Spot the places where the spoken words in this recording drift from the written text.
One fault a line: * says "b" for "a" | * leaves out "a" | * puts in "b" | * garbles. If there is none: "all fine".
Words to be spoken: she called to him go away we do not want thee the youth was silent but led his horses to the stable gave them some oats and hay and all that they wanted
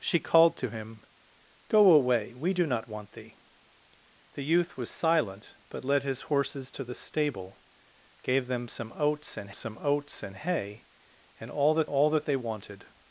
* puts in "some oats and"
* puts in "all that"